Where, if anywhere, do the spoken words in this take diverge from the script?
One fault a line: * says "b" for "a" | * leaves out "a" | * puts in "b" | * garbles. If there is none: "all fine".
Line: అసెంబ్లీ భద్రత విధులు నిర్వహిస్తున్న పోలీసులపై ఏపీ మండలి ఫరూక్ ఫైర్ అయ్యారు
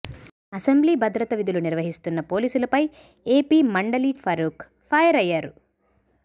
all fine